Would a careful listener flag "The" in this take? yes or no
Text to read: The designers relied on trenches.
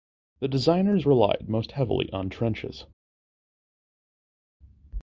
no